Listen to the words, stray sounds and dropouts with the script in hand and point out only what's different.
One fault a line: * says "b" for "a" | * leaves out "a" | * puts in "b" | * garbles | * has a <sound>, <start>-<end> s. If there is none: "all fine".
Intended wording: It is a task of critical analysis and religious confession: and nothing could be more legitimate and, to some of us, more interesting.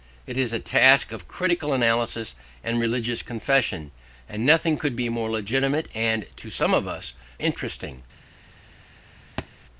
* leaves out "more"
* has a thud, 9.4-9.5 s